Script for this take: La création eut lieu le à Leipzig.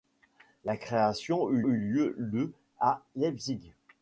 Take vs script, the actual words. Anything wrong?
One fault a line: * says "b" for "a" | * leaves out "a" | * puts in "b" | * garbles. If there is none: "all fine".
* puts in "eut"